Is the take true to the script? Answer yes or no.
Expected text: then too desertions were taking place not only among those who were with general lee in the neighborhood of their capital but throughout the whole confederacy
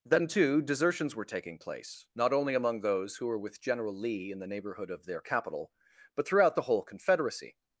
yes